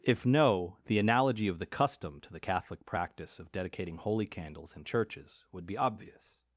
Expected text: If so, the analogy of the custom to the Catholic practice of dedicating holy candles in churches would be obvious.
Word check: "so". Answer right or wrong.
wrong